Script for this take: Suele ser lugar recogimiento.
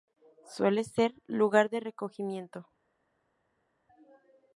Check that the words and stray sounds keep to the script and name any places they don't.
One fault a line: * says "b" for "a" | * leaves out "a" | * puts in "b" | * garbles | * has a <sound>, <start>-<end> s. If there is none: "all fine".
* puts in "de"